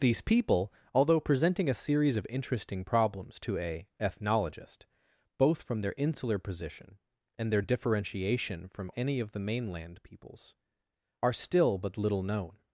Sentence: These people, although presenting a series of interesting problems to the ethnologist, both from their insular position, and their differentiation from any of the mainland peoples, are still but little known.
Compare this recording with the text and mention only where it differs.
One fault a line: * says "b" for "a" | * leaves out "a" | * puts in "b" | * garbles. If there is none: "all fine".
* says "a" for "the"